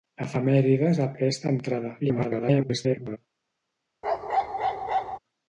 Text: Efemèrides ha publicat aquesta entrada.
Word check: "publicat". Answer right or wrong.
wrong